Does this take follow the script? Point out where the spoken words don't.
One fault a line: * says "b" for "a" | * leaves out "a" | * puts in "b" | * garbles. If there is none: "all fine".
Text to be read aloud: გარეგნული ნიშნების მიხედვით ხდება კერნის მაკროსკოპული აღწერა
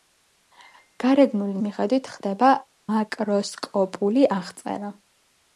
* leaves out "ნიშნების"
* leaves out "კერნის"